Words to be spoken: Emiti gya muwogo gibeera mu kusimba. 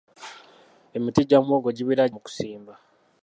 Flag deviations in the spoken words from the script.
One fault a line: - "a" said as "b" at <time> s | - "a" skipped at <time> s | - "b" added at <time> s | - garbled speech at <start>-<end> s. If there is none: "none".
none